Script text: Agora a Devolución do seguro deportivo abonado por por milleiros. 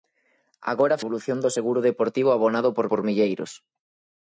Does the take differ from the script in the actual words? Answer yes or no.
no